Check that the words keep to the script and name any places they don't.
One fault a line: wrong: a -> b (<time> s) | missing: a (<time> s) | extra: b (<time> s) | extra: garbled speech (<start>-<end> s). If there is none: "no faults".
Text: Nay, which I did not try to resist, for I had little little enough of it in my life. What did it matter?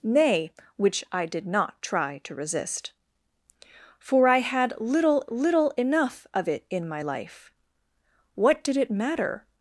no faults